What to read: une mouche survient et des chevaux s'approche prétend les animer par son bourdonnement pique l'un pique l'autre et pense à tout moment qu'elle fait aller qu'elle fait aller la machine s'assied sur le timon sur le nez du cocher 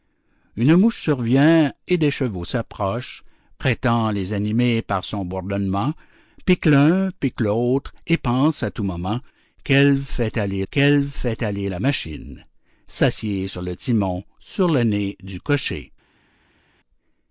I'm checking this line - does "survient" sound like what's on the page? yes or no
yes